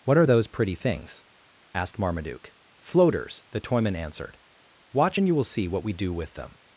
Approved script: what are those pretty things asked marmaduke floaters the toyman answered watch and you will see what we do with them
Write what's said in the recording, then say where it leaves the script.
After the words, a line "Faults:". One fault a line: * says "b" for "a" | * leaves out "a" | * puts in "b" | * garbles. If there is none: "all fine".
what are those pretty things asked marmaduke floaters the toyman answered watch and you will see what we do with them
Faults:
all fine